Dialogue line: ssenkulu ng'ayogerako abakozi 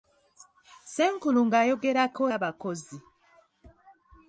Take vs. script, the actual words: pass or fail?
pass